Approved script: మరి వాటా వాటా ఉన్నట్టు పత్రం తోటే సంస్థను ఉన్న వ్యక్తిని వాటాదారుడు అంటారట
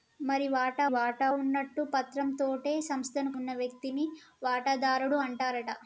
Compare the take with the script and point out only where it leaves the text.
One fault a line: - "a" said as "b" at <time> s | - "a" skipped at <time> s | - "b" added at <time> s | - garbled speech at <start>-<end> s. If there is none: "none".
none